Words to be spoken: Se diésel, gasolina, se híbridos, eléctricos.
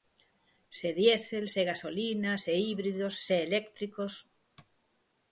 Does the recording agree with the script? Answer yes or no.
no